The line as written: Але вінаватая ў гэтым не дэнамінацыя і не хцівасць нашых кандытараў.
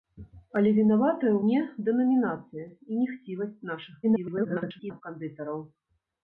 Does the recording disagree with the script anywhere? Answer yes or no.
yes